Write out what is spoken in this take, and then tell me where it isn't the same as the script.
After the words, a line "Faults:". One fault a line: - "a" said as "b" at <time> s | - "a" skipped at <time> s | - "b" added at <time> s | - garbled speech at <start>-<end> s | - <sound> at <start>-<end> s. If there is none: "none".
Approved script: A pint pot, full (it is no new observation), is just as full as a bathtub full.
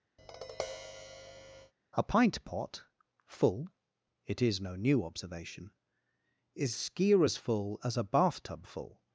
A pint pot, full (it is no new observation), is skier as full as a bathtub full.
Faults:
- tap at 0.2-1.7 s
- "just" said as "skier" at 6.7 s